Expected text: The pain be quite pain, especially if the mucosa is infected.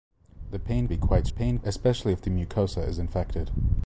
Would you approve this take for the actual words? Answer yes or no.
yes